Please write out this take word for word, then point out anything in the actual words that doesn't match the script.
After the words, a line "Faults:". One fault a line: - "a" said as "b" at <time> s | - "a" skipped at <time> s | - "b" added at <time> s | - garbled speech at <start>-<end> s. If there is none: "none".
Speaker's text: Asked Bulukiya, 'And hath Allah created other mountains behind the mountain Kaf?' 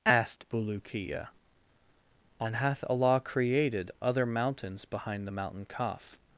Asked Bulukiya, 'And hath Allah created other mountains behind the mountain Kaf?'
Faults:
none